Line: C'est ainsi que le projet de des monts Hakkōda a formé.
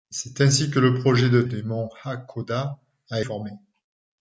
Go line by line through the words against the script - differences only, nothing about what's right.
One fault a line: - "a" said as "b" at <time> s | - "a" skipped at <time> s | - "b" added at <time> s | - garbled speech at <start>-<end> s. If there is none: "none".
none